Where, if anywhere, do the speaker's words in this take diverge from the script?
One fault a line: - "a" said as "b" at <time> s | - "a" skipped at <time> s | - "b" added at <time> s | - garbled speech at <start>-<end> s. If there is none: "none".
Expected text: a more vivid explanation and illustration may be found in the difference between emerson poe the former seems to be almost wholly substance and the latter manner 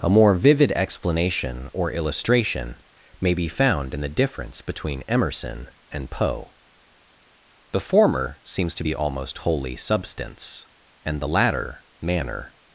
- "and" said as "or" at 1.7 s
- "and" added at 5.9 s